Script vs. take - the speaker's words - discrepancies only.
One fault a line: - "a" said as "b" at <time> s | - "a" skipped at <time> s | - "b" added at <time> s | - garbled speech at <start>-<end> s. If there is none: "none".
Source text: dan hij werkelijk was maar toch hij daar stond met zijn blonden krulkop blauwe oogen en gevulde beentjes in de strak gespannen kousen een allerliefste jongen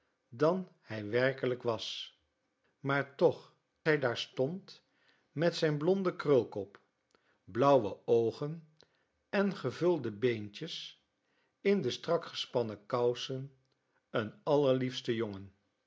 none